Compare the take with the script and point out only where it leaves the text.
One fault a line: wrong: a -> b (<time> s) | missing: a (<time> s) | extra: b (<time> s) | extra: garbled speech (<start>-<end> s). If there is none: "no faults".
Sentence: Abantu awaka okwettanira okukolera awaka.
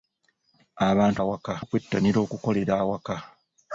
no faults